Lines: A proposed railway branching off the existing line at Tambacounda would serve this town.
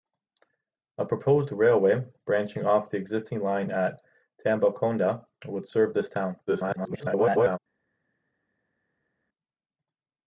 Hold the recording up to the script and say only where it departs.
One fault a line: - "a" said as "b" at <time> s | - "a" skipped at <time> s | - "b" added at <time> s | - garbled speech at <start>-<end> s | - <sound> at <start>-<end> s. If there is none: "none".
- garbled speech at 6.5-7.6 s